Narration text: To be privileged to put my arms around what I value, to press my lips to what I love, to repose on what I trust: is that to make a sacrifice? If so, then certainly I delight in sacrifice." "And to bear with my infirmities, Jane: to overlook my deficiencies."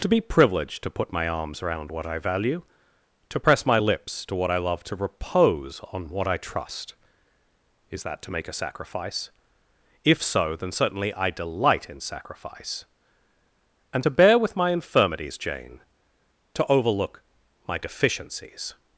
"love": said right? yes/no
yes